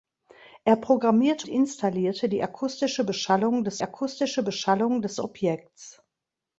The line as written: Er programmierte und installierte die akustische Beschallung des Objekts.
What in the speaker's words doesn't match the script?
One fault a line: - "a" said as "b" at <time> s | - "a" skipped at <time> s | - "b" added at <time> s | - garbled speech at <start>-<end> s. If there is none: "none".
- "und" skipped at 1.5 s
- "akustische Beschallung des" added at 3.8 s